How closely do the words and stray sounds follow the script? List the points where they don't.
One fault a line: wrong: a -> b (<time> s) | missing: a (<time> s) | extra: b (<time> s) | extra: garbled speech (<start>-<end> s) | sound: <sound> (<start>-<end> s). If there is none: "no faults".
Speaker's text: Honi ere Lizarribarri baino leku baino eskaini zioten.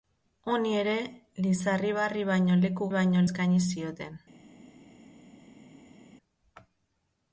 no faults